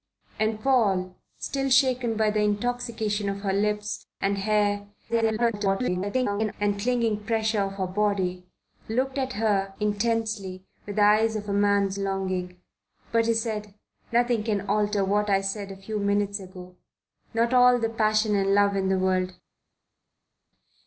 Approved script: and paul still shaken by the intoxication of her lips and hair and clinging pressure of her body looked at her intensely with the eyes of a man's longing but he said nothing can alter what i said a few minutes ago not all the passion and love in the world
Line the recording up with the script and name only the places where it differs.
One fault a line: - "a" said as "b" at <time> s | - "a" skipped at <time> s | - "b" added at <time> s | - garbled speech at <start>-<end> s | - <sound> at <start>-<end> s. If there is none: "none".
- garbled speech at 5.1-6.5 s